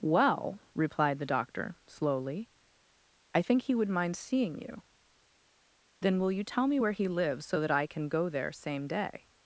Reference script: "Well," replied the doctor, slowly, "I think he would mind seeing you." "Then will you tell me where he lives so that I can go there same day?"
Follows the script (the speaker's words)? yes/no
yes